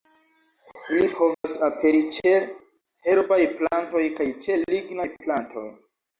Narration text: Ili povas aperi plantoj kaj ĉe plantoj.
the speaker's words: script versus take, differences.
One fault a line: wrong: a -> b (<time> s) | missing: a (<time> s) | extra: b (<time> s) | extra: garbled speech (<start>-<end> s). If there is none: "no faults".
extra: ĉe herbaj (2.1 s)
extra: lignaj (4.8 s)